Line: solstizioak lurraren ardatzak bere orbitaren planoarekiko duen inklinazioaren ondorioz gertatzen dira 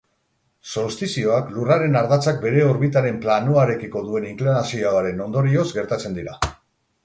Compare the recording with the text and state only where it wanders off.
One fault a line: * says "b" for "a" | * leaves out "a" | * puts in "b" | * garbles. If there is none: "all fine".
all fine